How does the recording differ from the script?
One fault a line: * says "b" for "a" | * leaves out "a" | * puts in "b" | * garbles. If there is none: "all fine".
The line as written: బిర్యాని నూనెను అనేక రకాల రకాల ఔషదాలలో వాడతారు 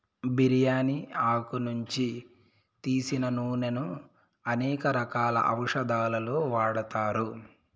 * puts in "ఆకు నుంచి తీసిన"
* leaves out "రకాల"